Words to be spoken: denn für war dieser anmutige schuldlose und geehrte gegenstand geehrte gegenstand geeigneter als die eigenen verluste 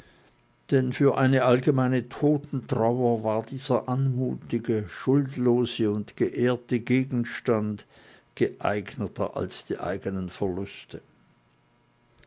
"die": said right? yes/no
yes